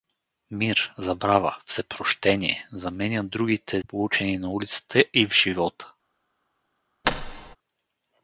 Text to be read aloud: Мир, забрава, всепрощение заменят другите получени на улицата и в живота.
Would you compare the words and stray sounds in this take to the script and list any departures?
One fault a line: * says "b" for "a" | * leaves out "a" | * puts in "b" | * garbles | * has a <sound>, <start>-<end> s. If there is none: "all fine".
* has a thud, 7.0-7.6 s